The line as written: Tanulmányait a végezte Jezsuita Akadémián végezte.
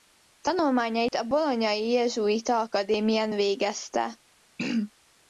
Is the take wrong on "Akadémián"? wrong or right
right